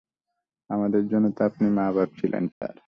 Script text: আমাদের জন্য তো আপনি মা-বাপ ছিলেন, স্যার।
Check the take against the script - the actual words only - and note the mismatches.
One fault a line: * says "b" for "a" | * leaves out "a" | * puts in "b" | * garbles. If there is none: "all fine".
all fine